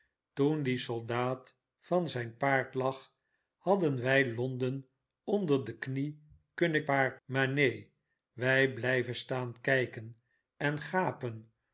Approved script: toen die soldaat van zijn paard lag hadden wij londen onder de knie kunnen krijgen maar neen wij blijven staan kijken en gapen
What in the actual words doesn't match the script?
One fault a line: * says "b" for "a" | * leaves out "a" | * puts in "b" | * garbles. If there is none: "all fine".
* says "paard" for "krijgen"